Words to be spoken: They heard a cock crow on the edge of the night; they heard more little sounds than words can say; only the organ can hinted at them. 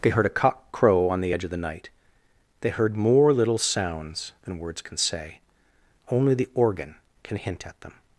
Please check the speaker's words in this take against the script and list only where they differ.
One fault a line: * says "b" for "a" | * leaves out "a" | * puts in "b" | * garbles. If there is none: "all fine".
* says "hint" for "hinted"